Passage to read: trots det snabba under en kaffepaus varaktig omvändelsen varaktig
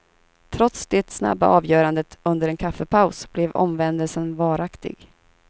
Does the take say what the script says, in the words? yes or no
no